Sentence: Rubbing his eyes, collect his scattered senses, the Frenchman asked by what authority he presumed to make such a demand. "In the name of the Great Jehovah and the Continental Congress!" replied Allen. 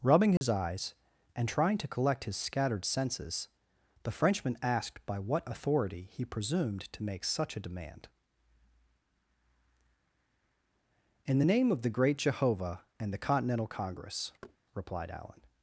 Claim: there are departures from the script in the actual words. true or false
true